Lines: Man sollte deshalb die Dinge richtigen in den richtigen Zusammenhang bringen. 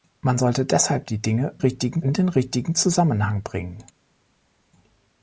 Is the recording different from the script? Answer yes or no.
no